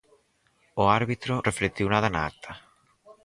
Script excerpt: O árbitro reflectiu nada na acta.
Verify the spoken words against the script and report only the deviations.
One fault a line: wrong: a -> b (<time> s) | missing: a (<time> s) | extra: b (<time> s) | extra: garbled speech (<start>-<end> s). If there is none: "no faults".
no faults